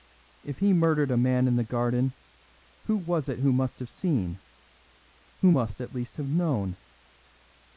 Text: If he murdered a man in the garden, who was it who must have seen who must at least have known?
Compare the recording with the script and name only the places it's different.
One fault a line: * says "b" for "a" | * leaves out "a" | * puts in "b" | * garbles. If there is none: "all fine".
all fine